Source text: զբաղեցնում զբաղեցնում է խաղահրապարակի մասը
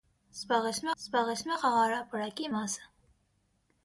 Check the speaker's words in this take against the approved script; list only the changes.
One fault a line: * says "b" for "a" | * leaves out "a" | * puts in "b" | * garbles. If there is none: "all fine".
all fine